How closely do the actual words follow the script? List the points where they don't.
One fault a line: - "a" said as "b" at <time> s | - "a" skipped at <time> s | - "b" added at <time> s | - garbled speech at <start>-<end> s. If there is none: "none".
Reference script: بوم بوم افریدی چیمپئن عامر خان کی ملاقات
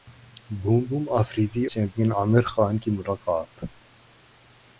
none